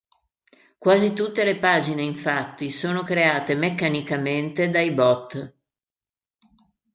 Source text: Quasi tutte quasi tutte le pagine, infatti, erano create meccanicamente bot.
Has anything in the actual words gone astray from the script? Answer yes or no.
yes